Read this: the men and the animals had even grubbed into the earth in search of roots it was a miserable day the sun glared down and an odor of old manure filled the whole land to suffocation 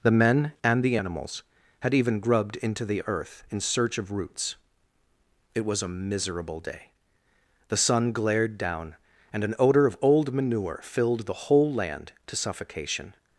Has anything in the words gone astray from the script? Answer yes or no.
no